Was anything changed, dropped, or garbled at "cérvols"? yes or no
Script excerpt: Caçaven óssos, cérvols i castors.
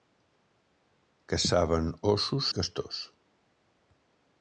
yes